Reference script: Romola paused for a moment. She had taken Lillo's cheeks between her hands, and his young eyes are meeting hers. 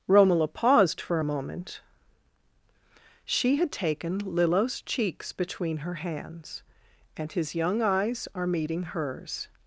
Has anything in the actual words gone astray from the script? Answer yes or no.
no